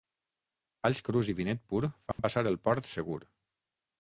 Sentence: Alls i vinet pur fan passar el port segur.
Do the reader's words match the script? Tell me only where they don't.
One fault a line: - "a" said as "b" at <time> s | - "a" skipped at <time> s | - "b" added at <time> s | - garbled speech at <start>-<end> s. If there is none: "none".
- "crus" added at 1.1 s